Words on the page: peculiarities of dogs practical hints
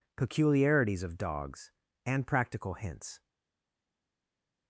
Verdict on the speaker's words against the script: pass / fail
fail